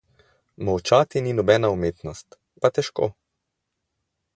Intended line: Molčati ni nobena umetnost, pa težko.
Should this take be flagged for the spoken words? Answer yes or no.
no